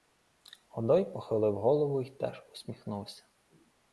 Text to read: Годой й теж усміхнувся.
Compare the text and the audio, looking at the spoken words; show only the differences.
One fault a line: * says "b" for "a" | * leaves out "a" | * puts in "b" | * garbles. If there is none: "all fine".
* puts in "похилив голову"